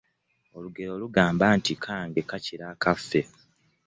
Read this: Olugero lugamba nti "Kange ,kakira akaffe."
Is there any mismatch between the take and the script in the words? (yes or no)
no